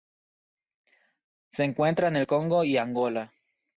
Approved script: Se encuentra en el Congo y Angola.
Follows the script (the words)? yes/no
yes